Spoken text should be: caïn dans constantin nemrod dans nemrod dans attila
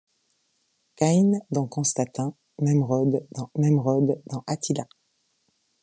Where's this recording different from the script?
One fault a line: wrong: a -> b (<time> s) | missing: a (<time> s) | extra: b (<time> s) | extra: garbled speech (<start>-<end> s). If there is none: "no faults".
no faults